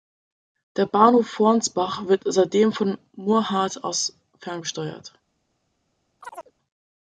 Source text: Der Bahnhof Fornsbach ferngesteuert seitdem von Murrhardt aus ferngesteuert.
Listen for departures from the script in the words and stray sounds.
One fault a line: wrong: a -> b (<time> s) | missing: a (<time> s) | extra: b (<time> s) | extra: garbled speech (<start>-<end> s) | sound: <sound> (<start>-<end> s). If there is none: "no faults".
wrong: ferngesteuert -> wird (2.1 s)
sound: chirp (6.2-6.5 s)